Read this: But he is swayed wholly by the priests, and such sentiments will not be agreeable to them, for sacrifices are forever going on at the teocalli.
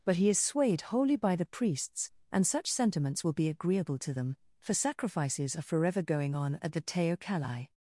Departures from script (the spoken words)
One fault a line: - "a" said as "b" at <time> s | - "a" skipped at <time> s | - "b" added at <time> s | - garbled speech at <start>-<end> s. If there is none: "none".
- "not" skipped at 3.3 s